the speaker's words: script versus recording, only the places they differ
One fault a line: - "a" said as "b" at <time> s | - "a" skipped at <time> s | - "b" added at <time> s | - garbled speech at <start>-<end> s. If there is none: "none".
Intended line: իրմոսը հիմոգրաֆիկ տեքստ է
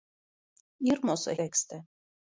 - "հիմոգրաֆիկ" skipped at 1.4 s